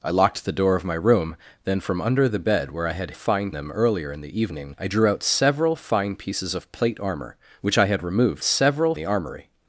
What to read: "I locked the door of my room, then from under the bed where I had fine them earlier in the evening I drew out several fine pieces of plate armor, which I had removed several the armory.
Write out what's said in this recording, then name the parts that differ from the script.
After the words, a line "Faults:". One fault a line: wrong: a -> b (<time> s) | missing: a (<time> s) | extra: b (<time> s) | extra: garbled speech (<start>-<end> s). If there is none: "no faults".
"I locked the door of my room, then from under the bed where I had fine them earlier in the evening I drew out several fine pieces of plate armor, which I had removed several the armory.
Faults:
no faults